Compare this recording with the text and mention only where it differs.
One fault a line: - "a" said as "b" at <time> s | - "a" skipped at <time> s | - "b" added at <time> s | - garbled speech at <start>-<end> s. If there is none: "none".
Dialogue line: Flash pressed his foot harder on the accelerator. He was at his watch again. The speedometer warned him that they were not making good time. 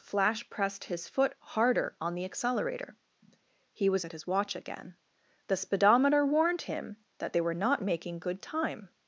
none